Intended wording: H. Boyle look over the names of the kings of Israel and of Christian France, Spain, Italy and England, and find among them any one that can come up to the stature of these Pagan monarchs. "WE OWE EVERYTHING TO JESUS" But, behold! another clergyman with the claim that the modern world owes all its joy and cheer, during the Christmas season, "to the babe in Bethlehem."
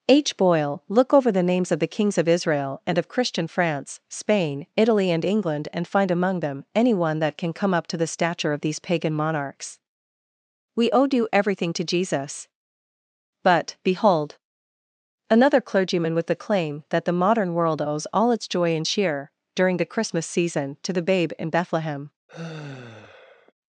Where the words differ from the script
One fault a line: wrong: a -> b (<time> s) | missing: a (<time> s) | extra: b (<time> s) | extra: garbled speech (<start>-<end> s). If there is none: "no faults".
extra: due (11.1 s)